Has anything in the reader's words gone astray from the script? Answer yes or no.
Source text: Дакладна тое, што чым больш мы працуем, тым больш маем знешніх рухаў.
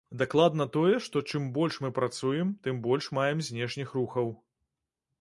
no